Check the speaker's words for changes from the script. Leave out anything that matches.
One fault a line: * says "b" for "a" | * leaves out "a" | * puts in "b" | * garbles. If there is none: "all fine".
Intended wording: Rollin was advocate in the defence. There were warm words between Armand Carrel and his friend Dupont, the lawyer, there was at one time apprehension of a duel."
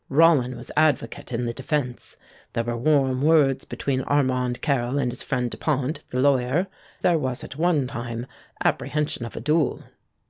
all fine